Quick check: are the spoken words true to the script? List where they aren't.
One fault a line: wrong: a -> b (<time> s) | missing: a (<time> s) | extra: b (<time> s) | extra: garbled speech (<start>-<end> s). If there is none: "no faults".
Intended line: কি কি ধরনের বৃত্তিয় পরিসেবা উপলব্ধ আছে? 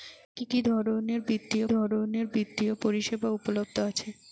extra: ধরনের বৃত্তিয় (1.7 s)